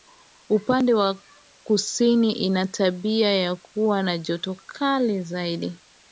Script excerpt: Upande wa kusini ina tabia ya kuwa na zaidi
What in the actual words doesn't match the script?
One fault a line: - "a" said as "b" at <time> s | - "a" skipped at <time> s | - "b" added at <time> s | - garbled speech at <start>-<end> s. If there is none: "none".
- "joto kali" added at 4.2 s